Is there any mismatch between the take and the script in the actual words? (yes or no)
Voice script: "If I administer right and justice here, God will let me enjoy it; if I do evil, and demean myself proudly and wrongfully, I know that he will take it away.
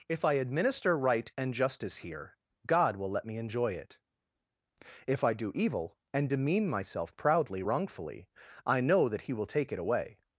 yes